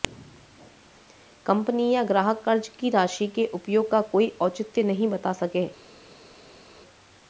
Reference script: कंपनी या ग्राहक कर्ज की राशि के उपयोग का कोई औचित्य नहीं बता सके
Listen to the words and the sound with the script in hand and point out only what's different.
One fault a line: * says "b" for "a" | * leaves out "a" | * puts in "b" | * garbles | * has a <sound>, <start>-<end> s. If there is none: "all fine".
all fine